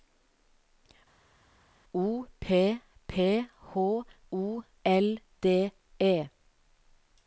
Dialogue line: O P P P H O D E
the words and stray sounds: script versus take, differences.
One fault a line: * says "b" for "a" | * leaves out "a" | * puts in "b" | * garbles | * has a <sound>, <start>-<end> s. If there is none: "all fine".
* leaves out "P"
* puts in "L"